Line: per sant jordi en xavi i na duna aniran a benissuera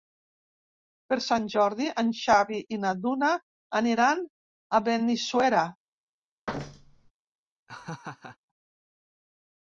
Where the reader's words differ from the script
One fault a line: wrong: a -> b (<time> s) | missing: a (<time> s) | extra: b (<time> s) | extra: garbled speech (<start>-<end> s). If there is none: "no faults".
no faults